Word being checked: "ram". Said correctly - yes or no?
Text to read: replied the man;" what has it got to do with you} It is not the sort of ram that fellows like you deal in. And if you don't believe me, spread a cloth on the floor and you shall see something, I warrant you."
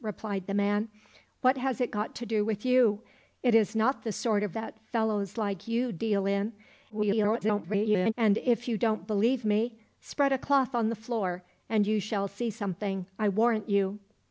no